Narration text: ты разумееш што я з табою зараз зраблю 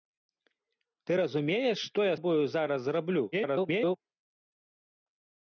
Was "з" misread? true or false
true